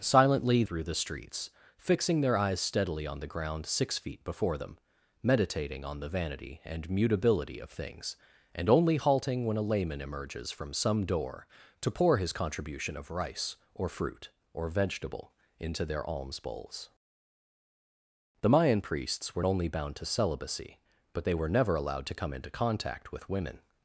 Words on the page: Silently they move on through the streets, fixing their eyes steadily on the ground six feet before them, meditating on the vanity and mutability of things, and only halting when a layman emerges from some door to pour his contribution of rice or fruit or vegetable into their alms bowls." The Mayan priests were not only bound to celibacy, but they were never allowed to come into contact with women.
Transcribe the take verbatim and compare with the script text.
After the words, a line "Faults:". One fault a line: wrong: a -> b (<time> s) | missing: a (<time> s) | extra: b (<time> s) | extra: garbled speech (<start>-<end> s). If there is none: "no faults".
Silently through the streets, fixing their eyes steadily on the ground six feet before them, meditating on the vanity and mutability of things, and only halting when a layman emerges from some door to pour his contribution of rice or fruit or vegetable into their alms bowls." The Mayan priests were only bound to celibacy, but they were never allowed to come into contact with women.
Faults:
missing: they move on (0.6 s)
missing: not (19.4 s)